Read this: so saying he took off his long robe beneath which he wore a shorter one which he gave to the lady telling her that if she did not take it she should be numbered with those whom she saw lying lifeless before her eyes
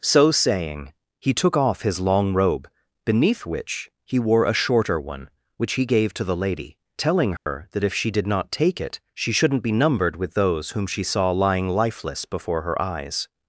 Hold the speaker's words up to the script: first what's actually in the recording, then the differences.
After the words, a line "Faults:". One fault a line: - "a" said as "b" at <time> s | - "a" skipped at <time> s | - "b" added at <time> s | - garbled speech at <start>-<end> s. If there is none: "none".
so saying he took off his long robe beneath which he wore a shorter one which he gave to the lady telling her that if she did not take it she shouldn't be numbered with those whom she saw lying lifeless before her eyes
Faults:
- "should" said as "shouldn't" at 9.3 s